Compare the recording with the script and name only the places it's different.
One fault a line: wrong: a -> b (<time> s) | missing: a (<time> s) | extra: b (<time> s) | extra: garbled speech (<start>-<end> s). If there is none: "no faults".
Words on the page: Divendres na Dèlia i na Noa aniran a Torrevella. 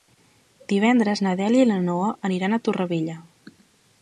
no faults